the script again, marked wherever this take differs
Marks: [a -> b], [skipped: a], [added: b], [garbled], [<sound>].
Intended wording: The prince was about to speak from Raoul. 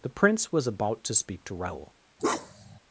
The prince was about to speak [from -> to] Raoul. [bark]